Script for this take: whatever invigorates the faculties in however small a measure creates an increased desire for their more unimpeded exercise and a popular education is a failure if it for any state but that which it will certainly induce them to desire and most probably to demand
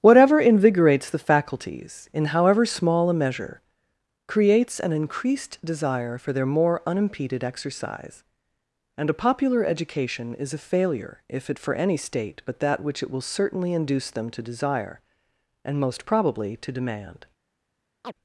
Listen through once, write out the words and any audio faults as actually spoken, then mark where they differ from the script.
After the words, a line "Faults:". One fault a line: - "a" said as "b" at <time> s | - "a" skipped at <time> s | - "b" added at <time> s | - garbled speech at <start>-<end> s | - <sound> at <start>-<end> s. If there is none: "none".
whatever invigorates the faculties in however small a measure creates an increased desire for their more unimpeded exercise and a popular education is a failure if it for any state but that which it will certainly induce them to desire and most probably to demand
Faults:
- chirp at 18.0-18.1 s